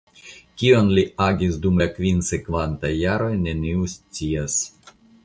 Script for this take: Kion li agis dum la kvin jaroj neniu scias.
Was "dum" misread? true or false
false